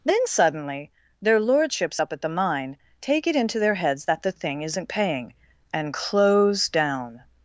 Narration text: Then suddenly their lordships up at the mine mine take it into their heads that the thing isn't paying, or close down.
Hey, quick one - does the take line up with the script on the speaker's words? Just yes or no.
no